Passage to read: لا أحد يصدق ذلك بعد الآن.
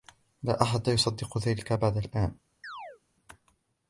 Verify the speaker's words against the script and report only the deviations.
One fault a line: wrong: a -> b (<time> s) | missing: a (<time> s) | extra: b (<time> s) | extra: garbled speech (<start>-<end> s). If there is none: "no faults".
no faults